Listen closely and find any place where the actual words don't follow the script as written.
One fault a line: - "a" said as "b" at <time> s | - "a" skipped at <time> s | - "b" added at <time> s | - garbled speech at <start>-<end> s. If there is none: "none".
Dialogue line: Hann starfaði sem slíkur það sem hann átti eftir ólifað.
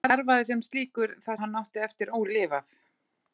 - "sem" skipped at 1.4 s